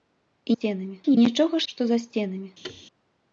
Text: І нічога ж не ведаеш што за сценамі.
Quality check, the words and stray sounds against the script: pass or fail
fail